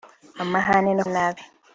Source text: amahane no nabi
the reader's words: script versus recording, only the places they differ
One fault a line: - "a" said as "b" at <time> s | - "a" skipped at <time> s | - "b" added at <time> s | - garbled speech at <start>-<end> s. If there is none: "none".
none